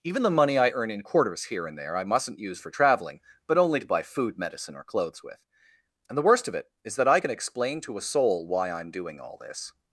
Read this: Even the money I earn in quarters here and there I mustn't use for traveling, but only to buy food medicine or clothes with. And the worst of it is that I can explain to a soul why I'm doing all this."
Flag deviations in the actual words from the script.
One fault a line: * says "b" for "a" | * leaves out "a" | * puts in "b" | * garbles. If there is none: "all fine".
all fine